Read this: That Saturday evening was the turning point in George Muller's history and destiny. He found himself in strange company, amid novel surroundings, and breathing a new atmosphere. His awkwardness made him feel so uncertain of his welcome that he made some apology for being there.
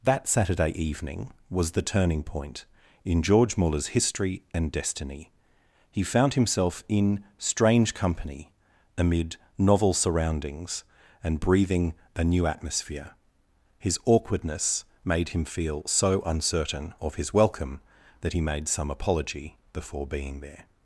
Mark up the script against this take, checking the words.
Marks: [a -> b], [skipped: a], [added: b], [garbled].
That Saturday evening was the turning point in George Muller's history and destiny. He found himself in strange company, amid novel surroundings, and breathing a new atmosphere. His awkwardness made him feel so uncertain of his welcome that he made some apology [for -> before] being there.